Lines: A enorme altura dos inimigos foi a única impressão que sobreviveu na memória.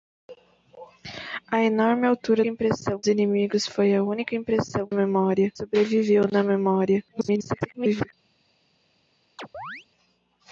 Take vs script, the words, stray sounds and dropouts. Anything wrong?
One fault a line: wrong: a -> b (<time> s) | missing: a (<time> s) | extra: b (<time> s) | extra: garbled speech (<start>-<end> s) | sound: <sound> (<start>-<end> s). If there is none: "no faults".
wrong: dos -> impressão (2.5 s)
wrong: que -> memória (4.9 s)
extra: garbled speech (7.1-8.1 s)
sound: chirp (9.4-9.9 s)